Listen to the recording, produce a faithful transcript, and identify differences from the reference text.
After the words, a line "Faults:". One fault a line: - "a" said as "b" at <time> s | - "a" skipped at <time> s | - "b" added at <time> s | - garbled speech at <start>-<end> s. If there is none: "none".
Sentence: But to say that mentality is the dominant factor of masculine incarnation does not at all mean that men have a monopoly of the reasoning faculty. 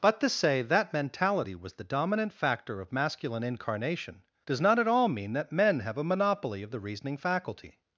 But to say that mentality was the dominant factor of masculine incarnation does not at all mean that men have a monopoly of the reasoning faculty.
Faults:
- "is" said as "was" at 1.5 s